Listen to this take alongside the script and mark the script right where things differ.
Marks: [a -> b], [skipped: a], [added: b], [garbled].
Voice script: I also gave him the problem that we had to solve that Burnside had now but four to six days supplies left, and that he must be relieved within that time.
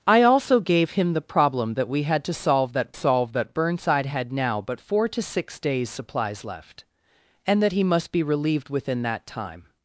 I also gave him the problem that we had to solve that [added: solve that] Burnside had now but four to six days supplies left, and that he must be relieved within that time.